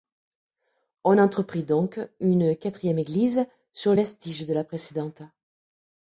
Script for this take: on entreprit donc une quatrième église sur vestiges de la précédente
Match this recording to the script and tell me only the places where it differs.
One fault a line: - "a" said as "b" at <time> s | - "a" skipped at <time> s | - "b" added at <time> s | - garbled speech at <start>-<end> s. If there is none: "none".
none